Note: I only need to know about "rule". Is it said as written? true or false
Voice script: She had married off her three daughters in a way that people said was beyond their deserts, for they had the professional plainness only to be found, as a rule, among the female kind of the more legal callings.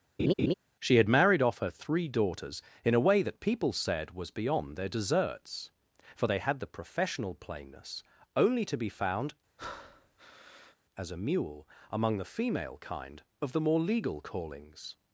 false